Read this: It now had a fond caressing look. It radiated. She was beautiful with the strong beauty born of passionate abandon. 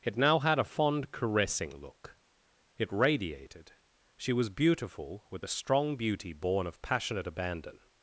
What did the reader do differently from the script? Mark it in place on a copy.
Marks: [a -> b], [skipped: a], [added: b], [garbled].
It now had a fond caressing look. It radiated. She was beautiful with the strong beauty born of passionate abandon.